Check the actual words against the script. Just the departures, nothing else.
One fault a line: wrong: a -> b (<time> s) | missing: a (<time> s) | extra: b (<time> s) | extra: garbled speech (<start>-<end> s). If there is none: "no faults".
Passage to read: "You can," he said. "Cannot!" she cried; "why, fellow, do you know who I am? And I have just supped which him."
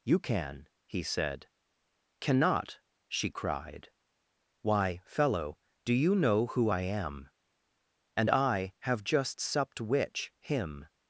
no faults